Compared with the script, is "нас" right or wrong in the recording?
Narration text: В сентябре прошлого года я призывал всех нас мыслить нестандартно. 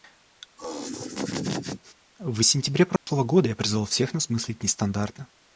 right